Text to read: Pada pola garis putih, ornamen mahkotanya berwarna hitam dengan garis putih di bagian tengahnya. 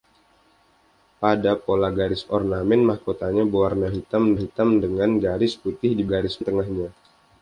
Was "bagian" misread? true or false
true